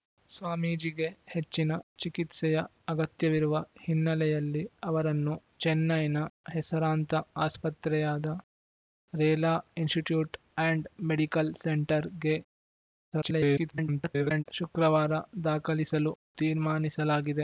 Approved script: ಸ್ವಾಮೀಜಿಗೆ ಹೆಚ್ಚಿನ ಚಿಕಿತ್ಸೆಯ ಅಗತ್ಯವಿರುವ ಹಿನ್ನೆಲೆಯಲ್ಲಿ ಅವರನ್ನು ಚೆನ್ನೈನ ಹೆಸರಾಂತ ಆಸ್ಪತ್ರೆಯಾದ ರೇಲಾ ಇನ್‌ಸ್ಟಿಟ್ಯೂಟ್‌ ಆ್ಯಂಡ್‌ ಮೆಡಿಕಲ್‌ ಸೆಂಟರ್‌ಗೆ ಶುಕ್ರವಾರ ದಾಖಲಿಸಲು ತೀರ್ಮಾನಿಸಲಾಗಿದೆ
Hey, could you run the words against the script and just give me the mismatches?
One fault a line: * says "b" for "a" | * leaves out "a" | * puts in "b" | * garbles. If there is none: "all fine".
* garbles